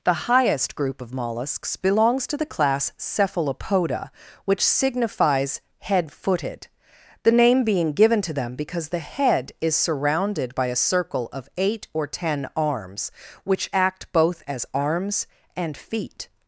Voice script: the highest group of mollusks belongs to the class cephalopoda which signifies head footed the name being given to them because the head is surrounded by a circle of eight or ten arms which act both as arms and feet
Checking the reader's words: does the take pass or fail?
pass